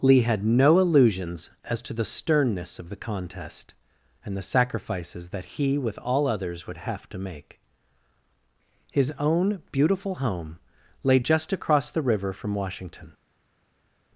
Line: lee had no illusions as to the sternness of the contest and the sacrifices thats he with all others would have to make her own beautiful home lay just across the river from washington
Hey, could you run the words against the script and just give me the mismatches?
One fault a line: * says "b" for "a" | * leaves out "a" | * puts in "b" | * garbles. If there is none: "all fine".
* says "that" for "thats"
* says "his" for "her"